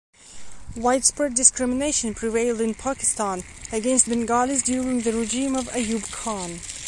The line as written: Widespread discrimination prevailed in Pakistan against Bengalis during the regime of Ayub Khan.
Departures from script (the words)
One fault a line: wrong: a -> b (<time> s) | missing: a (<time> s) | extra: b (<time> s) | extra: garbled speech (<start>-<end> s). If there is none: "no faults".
no faults